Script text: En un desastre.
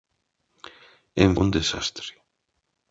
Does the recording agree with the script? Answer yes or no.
yes